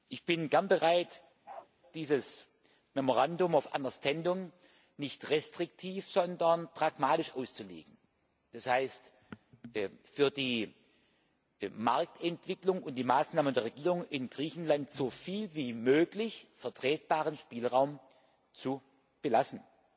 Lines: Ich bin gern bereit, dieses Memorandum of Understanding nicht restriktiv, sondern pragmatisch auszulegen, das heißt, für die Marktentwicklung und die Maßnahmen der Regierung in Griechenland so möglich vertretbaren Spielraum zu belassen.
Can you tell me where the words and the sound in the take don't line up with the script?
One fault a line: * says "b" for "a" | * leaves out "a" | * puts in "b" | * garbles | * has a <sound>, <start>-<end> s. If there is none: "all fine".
* has a bark, 1.4-1.7 s
* puts in "viel wie"